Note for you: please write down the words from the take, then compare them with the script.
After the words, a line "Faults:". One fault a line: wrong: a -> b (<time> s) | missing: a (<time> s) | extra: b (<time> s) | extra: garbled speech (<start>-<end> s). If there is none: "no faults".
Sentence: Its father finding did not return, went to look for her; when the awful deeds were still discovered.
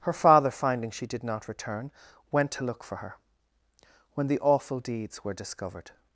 Her father finding she did not return, went to look for her; when the awful deeds were discovered.
Faults:
wrong: Its -> Her (0.0 s)
extra: she (0.9 s)
missing: still (5.3 s)